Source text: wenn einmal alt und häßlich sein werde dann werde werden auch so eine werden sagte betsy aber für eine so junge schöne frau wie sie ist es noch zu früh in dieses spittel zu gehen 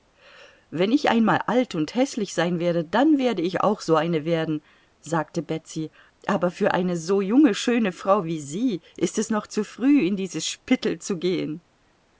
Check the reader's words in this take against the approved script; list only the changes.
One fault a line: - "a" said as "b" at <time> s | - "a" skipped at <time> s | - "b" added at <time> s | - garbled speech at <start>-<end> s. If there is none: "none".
- "ich" added at 0.9 s
- "werden" said as "ich" at 3.4 s